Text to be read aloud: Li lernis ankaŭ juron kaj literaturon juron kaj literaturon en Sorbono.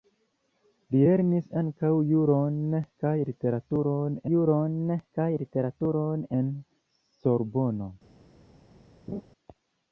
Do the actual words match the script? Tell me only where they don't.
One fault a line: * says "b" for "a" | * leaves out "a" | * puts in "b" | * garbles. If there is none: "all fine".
all fine